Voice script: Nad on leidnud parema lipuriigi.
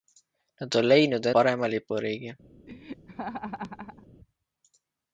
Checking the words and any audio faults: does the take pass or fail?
fail